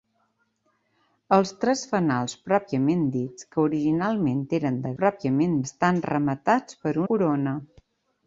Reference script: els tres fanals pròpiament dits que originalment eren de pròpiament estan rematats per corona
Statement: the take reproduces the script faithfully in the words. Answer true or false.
true